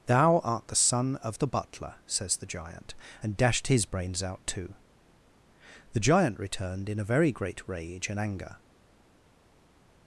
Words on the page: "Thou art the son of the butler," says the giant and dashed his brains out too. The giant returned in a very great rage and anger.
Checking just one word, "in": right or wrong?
right